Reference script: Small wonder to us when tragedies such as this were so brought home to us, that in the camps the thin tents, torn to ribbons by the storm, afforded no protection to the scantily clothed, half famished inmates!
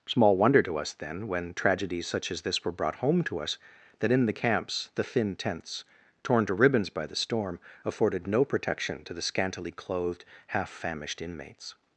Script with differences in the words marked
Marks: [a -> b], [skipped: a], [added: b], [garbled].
Small wonder to us [added: then] when tragedies such as this were [skipped: so] brought home to us, that in the camps the thin tents, torn to ribbons by the storm, afforded no protection to the scantily clothed, half famished inmates!